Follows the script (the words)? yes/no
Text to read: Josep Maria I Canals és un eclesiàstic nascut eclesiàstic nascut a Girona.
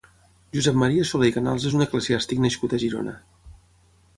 no